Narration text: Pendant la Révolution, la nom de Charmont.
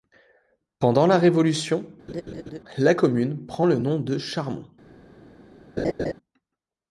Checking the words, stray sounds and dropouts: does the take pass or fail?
fail